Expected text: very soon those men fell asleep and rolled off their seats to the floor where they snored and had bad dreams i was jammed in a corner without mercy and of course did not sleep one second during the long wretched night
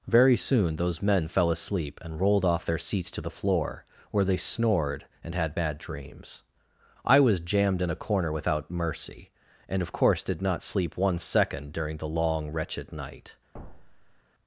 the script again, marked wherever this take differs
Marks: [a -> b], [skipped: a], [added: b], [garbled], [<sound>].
very soon those men fell asleep and rolled off their seats to the floor where they snored and had bad dreams i was jammed in a corner without mercy and of course did not sleep one second during the long wretched night [thud]